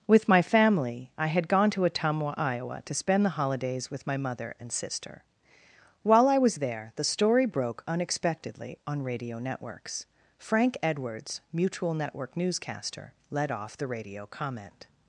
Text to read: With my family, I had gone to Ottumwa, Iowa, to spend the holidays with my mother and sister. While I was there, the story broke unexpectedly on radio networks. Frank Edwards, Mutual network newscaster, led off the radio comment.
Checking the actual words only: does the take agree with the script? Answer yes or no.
yes